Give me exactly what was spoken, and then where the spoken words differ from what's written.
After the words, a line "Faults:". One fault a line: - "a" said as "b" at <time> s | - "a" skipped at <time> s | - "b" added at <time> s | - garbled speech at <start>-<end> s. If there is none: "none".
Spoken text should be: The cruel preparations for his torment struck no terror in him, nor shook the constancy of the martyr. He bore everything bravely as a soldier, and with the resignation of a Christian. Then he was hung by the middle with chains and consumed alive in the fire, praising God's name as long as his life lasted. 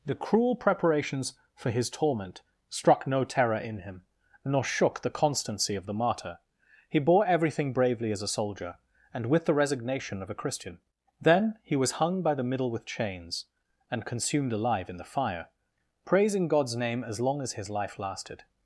The cruel preparations for his torment struck no terror in him, nor shook the constancy of the martyr. He bore everything bravely as a soldier, and with the resignation of a Christian. Then he was hung by the middle with chains and consumed alive in the fire, praising God's name as long as his life lasted.
Faults:
none